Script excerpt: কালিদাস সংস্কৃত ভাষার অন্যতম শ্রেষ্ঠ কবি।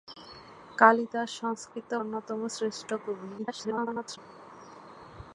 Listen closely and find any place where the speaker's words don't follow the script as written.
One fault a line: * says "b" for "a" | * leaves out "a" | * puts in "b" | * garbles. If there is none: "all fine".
* leaves out "ভাষার"
* garbles